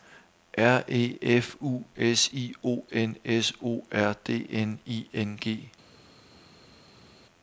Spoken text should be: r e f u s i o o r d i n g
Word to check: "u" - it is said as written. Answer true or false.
true